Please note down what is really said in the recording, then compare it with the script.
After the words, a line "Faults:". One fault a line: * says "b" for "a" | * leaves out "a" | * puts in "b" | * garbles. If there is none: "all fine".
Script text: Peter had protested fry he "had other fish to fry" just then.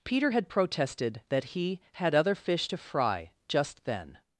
Peter had protested that he "had other fish to fry" just then.
Faults:
* says "that" for "fry"